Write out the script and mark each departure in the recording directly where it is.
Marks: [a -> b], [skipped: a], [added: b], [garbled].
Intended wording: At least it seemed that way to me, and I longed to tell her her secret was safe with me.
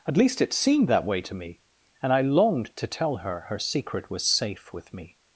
At least it seemed that way to me, and I longed to tell her her secret was safe with me.